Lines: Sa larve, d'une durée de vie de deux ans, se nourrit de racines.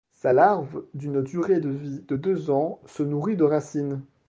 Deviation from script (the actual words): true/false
false